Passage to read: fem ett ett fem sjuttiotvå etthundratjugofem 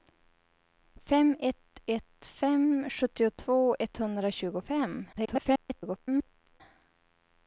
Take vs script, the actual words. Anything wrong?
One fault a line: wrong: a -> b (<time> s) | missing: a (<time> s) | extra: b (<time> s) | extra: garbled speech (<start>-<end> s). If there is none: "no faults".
extra: garbled speech (5.1-6.6 s)